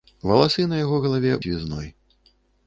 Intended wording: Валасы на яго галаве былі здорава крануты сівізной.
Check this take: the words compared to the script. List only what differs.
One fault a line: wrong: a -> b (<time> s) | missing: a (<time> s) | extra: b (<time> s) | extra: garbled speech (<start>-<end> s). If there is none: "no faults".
missing: былі здорава крануты (1.3 s)